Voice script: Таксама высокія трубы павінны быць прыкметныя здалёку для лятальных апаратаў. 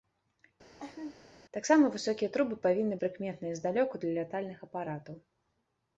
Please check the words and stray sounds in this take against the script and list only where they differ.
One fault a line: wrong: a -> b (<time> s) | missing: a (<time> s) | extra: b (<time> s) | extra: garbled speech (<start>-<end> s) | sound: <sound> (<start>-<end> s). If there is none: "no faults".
sound: laugh (0.8-1.1 s)
missing: быць (3.0 s)